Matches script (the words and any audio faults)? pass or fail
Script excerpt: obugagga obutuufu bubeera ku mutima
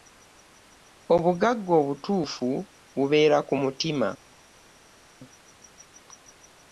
pass